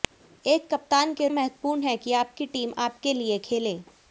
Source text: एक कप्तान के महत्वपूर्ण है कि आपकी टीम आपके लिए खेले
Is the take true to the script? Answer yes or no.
yes